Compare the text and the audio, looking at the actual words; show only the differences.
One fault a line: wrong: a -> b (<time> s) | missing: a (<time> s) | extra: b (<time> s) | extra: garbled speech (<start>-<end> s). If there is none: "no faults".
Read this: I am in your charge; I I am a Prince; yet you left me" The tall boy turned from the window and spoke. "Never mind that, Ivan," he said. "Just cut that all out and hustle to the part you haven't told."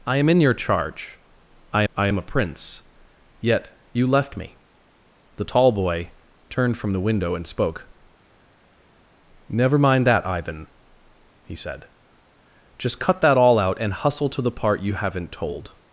no faults